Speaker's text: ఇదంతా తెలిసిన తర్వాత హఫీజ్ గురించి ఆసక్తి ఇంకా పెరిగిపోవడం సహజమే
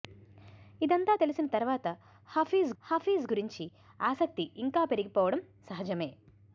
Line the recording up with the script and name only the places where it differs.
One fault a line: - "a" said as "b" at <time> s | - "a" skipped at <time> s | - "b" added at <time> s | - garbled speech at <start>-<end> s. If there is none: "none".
- "హఫీజ్" added at 2.8 s